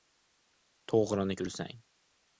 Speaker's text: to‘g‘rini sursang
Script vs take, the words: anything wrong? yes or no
no